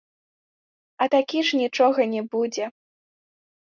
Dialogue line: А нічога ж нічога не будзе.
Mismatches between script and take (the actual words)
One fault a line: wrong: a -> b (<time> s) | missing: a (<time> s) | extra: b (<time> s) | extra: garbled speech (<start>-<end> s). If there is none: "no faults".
wrong: нічога -> такі (1.2 s)